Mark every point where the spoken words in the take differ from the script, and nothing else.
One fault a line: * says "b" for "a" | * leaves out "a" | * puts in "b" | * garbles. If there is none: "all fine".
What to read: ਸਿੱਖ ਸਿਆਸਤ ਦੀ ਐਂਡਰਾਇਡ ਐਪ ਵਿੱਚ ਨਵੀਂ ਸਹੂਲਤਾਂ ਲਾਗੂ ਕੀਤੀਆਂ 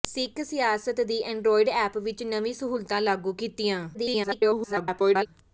* garbles